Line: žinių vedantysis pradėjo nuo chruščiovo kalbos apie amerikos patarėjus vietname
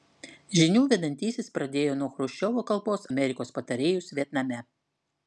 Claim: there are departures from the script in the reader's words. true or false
true